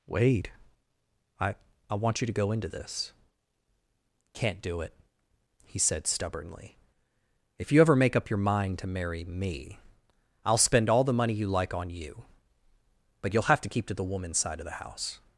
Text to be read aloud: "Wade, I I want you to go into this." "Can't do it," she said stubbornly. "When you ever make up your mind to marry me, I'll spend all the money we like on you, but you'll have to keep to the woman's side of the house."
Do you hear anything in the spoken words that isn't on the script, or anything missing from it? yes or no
yes